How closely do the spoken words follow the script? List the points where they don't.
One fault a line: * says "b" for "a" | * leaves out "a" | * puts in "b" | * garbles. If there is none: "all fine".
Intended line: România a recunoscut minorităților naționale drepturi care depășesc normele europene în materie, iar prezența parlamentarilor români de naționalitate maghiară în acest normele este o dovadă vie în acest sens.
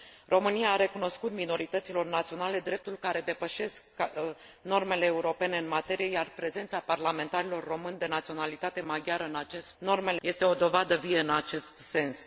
all fine